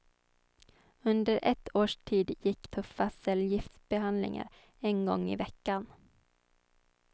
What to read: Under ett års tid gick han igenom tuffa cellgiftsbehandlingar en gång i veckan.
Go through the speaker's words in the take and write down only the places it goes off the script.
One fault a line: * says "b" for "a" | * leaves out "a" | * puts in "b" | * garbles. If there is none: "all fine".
* leaves out "han igenom"